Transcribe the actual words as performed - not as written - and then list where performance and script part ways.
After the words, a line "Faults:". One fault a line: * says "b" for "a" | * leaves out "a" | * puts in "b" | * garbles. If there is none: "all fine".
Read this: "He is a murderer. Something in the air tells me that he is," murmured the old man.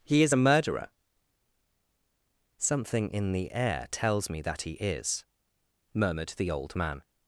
"He is a murderer. Something in the air tells me that he is," murmured the old man.
Faults:
all fine